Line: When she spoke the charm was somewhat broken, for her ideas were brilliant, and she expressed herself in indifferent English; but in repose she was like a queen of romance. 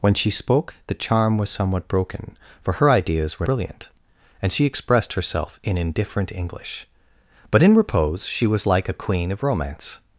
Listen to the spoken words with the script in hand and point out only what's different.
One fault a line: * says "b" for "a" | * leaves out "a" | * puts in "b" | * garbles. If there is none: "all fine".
all fine